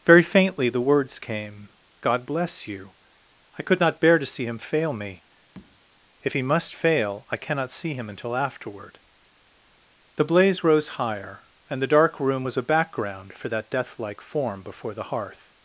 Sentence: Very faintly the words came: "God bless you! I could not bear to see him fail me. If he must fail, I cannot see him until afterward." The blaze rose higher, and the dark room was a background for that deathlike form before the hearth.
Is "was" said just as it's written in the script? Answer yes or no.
yes